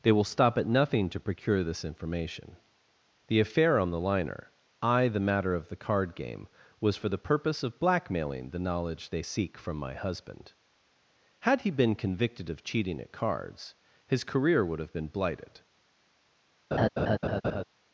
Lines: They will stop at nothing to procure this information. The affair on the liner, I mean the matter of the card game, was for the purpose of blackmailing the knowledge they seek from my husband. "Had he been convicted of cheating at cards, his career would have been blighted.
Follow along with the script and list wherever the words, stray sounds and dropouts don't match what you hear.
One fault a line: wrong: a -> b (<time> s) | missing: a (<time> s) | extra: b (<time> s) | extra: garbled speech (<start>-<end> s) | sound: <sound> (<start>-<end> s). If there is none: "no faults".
missing: mean (5.1 s)
sound: laugh (16.7-17.6 s)